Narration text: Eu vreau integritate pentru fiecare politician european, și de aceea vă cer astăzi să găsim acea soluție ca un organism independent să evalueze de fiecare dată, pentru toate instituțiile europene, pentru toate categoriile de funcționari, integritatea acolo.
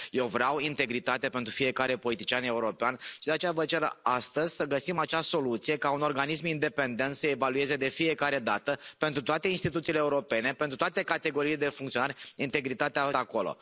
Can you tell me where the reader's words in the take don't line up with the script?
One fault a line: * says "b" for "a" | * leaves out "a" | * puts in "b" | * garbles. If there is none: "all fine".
all fine